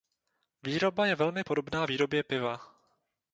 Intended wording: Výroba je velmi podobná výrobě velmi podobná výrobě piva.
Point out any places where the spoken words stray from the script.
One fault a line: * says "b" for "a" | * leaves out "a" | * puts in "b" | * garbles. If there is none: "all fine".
* leaves out "velmi podobná výrobě"